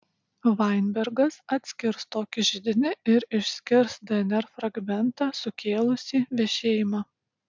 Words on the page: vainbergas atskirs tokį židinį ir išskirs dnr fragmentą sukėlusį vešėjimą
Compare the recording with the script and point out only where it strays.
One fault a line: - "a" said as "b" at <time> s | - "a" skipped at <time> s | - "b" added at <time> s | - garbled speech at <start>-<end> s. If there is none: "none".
none